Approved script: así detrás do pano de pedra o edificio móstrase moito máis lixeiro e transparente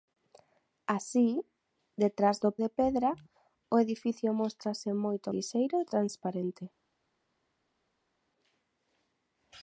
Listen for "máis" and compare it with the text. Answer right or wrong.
wrong